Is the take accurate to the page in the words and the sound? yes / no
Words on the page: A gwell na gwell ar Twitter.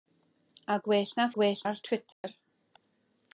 no